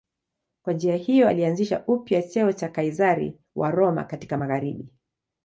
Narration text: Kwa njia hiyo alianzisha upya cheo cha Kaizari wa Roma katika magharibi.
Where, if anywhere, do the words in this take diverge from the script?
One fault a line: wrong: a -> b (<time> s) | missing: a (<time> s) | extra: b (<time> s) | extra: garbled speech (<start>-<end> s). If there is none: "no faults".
no faults